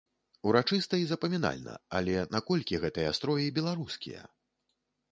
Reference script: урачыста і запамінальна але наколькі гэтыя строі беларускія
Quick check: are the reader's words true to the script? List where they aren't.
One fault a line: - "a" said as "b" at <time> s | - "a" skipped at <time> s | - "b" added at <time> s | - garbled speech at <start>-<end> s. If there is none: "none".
none